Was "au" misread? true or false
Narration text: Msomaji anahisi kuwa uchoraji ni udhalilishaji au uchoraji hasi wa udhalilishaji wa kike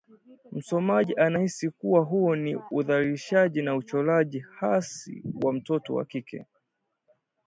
true